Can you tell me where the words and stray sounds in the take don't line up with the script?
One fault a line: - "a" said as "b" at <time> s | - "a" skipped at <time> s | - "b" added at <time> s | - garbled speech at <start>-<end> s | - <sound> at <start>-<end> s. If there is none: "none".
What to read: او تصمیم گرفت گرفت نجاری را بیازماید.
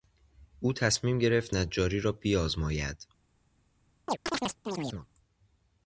- "گرفت" skipped at 1.6 s
- chirp at 4.1-5.1 s